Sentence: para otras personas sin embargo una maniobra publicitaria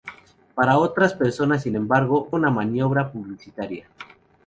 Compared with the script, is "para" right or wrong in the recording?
right